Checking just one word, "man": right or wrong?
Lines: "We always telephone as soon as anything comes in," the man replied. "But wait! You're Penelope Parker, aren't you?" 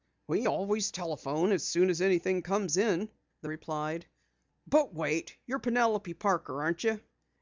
wrong